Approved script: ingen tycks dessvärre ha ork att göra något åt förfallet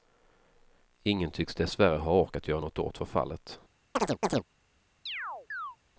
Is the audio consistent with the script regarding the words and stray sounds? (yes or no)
no